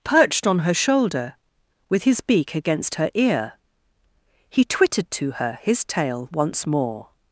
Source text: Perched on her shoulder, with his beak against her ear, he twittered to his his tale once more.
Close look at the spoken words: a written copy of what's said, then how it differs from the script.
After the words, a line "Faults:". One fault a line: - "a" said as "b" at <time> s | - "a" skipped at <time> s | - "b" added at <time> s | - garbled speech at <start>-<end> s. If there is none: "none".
Perched on her shoulder, with his beak against her ear, he twittered to her his tale once more.
Faults:
- "his" said as "her" at 5.3 s